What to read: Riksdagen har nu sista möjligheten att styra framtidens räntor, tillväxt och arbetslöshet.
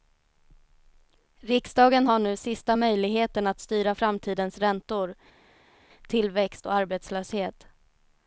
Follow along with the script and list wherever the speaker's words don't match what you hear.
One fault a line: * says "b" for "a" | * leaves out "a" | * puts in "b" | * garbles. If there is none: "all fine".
all fine